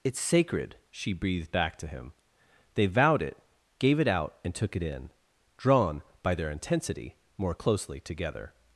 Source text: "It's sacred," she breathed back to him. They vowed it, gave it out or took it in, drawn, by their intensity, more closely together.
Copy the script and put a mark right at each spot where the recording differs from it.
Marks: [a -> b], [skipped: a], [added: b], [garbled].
"It's sacred," she breathed back to him. They vowed it, gave it out [or -> and] took it in, drawn, by their intensity, more closely together.